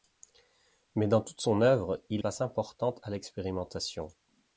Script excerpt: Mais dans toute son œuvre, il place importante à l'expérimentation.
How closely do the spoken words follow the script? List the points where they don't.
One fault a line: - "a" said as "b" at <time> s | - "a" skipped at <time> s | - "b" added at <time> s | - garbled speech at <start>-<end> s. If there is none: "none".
none